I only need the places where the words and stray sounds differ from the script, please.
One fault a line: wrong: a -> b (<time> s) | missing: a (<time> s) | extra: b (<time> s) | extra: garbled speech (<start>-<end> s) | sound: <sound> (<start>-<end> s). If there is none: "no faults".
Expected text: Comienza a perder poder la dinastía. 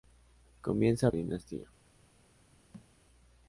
missing: perder poder la (1.1 s)
sound: thud (2.7-2.9 s)